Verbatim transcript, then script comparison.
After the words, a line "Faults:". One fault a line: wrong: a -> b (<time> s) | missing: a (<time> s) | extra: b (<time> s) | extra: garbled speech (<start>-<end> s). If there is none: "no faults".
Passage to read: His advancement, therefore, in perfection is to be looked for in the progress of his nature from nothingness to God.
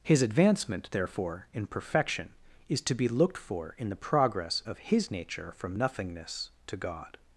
His advancement, therefore, in perfection is to be looked for in the progress of his nature from nothingness to God.
Faults:
no faults